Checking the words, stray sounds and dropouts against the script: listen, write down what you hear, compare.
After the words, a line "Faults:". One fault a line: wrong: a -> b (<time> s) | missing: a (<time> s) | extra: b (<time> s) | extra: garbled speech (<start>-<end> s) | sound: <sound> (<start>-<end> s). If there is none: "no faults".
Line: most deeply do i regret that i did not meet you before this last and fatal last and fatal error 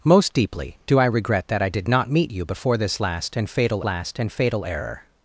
most deeply do i regret that i did not meet you before this last and fatal last and fatal error
Faults:
no faults